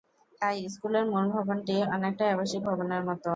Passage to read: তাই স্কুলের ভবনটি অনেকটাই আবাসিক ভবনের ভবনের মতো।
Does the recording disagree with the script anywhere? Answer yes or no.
yes